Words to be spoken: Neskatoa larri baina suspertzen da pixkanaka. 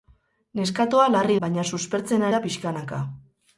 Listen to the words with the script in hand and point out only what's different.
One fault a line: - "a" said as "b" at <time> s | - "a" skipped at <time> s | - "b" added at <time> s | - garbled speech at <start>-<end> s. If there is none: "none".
none